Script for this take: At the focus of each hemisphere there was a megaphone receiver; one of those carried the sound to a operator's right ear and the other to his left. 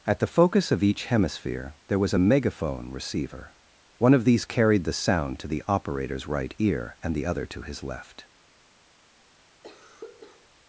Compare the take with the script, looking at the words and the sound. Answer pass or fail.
fail